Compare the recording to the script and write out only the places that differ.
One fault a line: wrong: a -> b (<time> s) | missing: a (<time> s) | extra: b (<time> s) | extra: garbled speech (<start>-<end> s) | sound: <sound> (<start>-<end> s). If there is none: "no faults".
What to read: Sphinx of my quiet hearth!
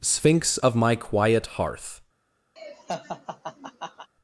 sound: laugh (2.6-4.1 s)